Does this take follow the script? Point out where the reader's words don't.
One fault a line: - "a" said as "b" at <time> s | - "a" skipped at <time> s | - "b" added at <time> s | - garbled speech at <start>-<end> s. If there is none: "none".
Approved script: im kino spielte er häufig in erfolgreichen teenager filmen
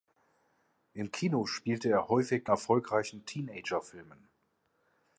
- "in" skipped at 2.5 s